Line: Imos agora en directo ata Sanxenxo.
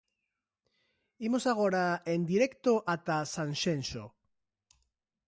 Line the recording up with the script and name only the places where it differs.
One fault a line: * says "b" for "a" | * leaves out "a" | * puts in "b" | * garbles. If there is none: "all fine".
all fine